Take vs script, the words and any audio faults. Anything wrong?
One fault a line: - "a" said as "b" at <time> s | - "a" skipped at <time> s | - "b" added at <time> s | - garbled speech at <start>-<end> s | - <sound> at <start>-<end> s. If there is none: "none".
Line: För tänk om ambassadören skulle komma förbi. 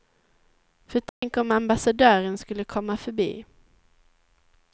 - dropout at 1.1-1.2 s